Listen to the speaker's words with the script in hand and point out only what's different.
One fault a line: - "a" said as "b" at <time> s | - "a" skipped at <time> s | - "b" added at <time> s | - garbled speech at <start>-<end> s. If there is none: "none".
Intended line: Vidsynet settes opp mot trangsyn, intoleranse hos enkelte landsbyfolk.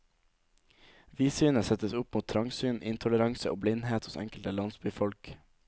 - "og blindhet" added at 3.5 s